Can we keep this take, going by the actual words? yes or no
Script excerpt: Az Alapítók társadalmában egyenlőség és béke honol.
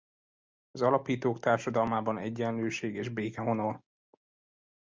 yes